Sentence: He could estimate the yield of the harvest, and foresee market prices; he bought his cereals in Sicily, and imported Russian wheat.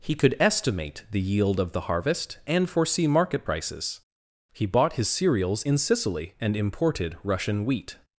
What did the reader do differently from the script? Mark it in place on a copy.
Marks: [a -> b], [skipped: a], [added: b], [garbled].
He could estimate the yield of the harvest, and foresee market prices; he bought his cereals in Sicily, and imported Russian wheat.